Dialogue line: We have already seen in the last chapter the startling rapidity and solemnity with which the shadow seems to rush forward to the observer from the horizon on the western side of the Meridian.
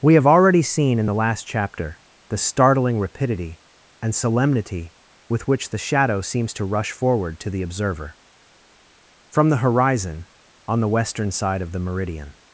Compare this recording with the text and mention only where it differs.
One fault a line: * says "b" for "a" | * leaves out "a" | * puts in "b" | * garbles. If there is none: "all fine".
all fine